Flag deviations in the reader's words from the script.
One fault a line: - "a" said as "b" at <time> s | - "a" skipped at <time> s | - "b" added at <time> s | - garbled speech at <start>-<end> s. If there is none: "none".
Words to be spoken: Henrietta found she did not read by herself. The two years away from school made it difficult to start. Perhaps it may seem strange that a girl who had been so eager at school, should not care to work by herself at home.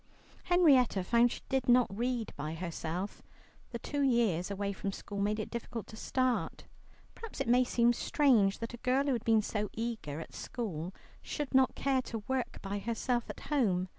none